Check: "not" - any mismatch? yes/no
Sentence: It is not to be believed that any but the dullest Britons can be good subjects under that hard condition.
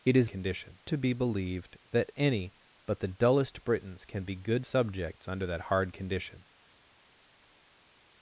yes